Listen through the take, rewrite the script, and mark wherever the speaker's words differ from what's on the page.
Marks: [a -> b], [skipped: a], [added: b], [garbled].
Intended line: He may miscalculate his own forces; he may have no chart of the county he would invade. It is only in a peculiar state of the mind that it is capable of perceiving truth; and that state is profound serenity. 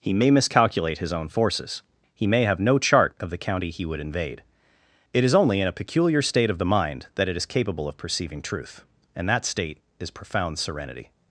He may miscalculate his own forces; he may have no chart of the county he would invade. It is only in a peculiar state of the mind that it is capable of perceiving truth; and that state is profound serenity.